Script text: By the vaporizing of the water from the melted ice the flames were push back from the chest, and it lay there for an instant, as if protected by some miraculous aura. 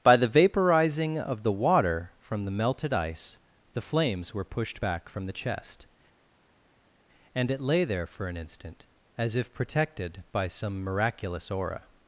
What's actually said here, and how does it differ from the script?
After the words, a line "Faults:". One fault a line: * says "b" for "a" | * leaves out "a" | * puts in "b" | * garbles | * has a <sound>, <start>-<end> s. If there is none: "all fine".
By the vaporizing of the water from the melted ice the flames were pushed back from the chest, and it lay there for an instant, as if protected by some miraculous aura.
Faults:
* says "pushed" for "push"